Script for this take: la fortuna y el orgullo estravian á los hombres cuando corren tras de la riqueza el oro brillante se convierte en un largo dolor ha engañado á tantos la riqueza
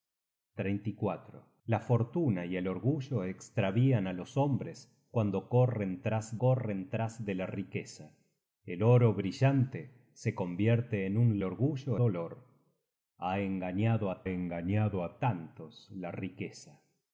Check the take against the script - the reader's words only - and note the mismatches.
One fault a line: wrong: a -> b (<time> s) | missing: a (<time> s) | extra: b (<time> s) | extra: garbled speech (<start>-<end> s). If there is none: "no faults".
extra: corren tras (6.4 s)
wrong: largo -> orgullo (11.4 s)
extra: engañado á (14.3 s)